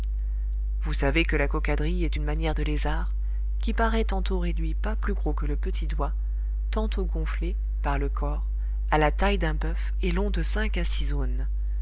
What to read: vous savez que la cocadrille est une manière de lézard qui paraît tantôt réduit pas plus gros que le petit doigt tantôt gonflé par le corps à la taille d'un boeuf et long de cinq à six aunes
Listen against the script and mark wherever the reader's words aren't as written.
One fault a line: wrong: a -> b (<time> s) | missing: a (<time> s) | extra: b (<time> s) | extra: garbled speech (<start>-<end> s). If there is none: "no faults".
no faults